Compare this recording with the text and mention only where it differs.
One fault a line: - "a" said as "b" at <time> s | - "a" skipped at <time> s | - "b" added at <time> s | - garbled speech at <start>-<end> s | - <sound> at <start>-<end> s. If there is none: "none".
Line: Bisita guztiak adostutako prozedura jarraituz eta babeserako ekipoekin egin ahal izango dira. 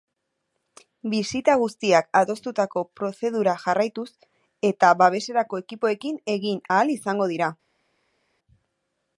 none